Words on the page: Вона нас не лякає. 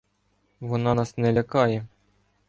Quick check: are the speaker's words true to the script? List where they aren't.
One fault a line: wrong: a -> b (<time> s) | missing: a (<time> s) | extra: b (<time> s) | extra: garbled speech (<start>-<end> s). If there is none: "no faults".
no faults